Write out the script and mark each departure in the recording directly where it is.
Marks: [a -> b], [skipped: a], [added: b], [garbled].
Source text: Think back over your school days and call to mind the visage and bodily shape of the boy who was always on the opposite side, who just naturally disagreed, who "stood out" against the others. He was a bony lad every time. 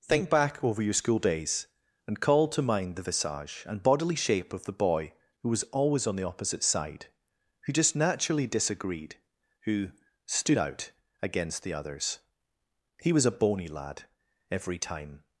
Think back over your school days and call to mind the visage and bodily shape of the boy who was always on the opposite side, who just naturally disagreed, who "stood out" against the others. He was a bony lad every time.